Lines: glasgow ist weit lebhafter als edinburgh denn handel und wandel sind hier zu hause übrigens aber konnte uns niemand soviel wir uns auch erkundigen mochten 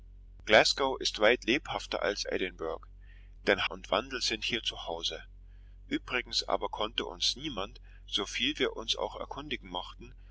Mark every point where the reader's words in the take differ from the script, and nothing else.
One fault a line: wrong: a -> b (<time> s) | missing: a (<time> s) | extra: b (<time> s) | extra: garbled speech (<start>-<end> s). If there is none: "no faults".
missing: handel (3.7 s)